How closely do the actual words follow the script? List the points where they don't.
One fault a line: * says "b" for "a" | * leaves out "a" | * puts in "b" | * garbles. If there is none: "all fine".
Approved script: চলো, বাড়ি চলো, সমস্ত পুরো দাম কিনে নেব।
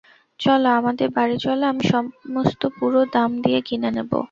* puts in "আমাদের"
* puts in "আমি"
* puts in "দিয়ে"